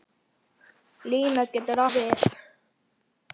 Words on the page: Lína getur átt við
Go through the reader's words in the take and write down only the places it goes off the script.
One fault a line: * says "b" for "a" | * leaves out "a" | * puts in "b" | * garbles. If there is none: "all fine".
* leaves out "átt"